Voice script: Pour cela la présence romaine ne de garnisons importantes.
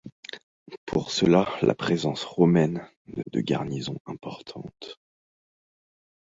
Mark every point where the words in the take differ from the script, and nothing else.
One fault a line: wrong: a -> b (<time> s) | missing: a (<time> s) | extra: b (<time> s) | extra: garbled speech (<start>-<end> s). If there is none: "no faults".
no faults